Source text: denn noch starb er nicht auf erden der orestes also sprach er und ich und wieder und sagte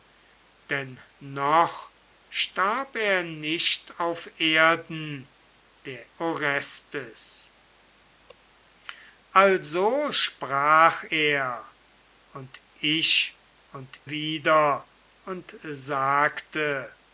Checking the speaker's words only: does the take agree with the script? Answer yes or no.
yes